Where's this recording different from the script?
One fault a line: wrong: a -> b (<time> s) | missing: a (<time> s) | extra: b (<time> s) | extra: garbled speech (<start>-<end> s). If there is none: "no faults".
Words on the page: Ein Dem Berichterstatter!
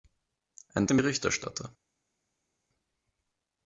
no faults